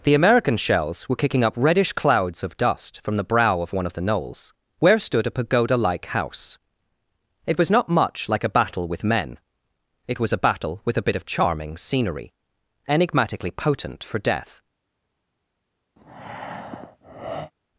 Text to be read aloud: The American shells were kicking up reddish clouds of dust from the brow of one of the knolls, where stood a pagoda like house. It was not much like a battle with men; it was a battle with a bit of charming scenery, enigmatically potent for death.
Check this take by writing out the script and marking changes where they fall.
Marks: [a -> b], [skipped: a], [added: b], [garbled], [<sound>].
The American shells were kicking up reddish clouds of dust from the brow of one of the knolls, where stood a pagoda like house. It was not much like a battle with men; it was a battle with a bit of charming scenery, enigmatically potent for death. [breath]